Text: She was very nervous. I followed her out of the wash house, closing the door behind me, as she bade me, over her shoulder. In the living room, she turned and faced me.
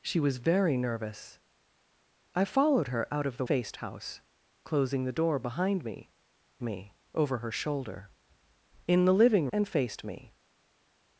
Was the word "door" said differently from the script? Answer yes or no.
no